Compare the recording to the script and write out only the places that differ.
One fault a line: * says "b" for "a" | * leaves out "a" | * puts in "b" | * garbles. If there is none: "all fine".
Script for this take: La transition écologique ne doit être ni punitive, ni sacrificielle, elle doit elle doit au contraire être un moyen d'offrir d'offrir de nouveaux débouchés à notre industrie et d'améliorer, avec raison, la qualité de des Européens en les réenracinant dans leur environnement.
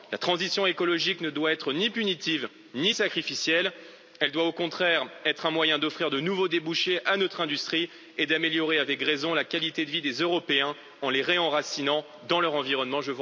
* leaves out "elle doit"
* leaves out "d'offrir"
* puts in "vie"